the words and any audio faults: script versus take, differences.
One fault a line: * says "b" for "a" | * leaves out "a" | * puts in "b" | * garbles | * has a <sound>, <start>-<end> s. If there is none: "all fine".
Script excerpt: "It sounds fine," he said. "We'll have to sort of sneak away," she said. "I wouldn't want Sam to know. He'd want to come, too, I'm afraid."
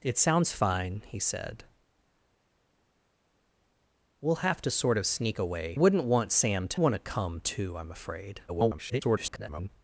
* leaves out "she said I"
* leaves out "know He'd"
* garbles